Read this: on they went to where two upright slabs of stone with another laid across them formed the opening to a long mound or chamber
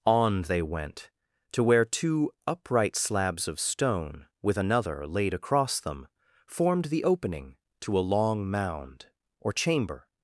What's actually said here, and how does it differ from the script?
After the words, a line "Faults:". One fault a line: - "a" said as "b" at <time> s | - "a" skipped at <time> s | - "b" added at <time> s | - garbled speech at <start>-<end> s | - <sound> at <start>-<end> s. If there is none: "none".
on they went to where two upright slabs of stone with another laid across them formed the opening to a long mound or chamber
Faults:
none